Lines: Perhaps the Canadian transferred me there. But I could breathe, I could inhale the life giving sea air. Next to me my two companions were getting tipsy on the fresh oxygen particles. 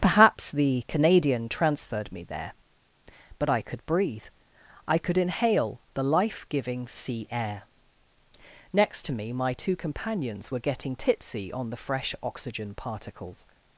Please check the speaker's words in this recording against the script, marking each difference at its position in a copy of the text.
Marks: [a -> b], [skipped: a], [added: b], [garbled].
Perhaps the Canadian transferred me there. But I could breathe, I could inhale the life giving sea air. Next to me my two companions were getting tipsy on the fresh oxygen particles.